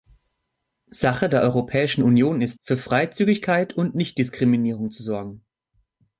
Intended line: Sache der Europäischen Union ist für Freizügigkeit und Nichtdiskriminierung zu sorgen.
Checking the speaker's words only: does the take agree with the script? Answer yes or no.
yes